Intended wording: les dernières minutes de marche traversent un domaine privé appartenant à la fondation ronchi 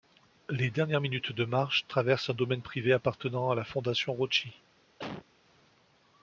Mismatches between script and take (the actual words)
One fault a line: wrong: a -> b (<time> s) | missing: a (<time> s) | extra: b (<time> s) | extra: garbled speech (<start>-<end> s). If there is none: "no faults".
no faults